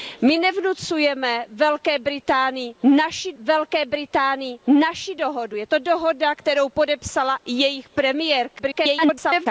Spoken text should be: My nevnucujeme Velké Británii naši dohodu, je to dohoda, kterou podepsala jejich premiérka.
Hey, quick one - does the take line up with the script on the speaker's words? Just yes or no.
no